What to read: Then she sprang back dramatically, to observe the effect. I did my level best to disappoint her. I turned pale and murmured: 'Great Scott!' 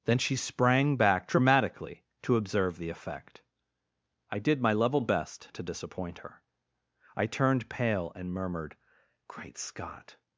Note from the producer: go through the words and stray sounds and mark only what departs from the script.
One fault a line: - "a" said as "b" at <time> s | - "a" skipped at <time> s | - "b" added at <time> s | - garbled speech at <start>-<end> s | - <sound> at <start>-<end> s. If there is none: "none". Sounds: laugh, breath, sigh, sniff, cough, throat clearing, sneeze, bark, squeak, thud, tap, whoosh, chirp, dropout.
none